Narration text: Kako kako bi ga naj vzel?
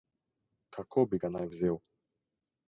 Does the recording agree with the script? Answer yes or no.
no